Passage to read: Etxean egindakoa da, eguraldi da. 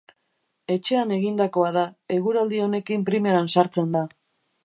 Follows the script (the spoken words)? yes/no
no